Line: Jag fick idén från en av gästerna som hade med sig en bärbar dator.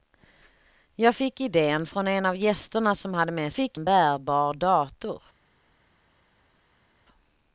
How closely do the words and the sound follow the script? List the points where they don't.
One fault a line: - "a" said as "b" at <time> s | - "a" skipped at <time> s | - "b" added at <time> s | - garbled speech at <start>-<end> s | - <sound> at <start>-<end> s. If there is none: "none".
- "sig" said as "fick" at 3.5 s